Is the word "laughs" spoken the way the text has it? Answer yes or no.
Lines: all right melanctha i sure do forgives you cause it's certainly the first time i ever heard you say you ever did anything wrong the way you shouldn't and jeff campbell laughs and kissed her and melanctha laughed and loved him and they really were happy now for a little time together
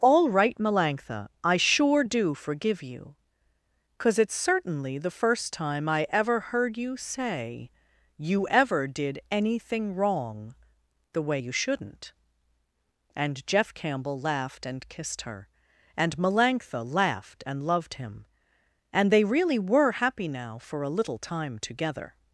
no